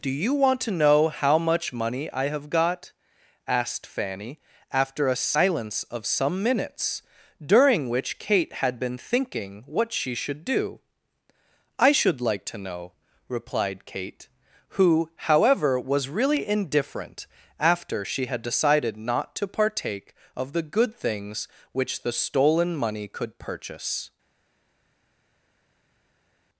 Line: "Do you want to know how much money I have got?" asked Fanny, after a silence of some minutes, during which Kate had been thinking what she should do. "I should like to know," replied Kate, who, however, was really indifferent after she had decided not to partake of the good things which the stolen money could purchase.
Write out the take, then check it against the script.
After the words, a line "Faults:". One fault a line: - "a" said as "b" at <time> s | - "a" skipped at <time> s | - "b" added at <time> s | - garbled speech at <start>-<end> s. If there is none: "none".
"Do you want to know how much money I have got?" asked Fanny, after a silence of some minutes, during which Kate had been thinking what she should do. "I should like to know," replied Kate, who, however, was really indifferent after she had decided not to partake of the good things which the stolen money could purchase.
Faults:
none